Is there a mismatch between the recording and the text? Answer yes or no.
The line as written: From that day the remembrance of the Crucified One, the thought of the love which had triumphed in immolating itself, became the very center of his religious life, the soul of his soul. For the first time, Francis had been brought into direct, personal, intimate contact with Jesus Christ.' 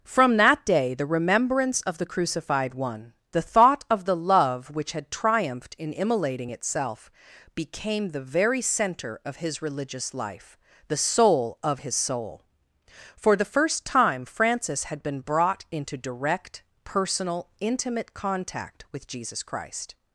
no